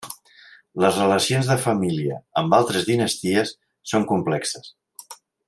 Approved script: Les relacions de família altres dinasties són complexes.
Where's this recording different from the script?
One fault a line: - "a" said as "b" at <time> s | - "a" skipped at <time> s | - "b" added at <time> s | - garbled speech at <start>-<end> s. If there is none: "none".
- "amb" added at 2.4 s